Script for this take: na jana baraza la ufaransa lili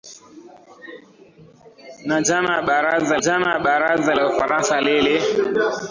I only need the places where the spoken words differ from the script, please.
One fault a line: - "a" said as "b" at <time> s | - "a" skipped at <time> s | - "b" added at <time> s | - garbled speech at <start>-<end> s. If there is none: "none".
- "jana baraza" added at 3.2 s